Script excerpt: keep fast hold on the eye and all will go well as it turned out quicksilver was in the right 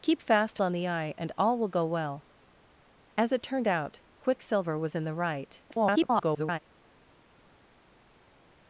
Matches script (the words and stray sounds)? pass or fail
fail